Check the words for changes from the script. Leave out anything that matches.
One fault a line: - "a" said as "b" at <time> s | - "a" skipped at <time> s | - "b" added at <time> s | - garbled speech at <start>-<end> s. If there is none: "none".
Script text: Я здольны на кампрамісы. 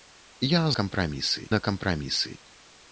- "здольны" said as "кампрамісы" at 0.8 s